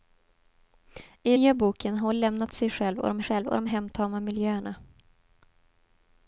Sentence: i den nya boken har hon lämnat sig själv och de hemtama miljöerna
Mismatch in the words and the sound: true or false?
true